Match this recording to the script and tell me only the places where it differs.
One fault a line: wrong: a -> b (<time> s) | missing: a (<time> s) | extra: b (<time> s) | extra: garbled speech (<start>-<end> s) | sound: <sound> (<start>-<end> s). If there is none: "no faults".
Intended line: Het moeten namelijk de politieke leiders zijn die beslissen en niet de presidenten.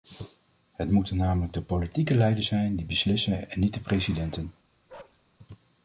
sound: bark (4.9-5.2 s)